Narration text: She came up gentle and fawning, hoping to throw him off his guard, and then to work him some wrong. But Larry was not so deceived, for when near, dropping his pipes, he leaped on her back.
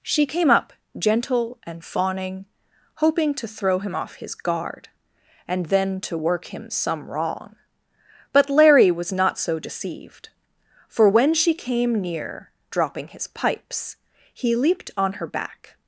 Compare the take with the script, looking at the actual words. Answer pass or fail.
fail